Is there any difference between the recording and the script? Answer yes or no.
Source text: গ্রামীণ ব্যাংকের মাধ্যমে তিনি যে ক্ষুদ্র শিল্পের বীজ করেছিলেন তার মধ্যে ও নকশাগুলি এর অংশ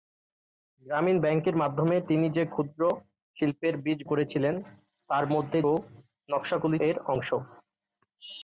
no